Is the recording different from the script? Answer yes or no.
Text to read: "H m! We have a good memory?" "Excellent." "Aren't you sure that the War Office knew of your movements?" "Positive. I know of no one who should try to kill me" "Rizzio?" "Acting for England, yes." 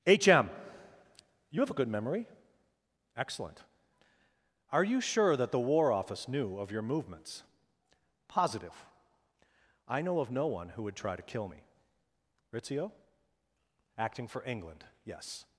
yes